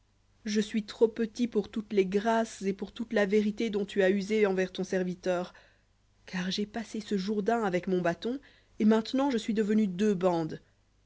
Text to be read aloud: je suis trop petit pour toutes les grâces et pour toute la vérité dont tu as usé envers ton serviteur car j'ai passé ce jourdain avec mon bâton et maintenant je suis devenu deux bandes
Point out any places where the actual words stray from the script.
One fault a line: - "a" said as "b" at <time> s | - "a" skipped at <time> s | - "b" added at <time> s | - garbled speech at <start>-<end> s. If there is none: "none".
none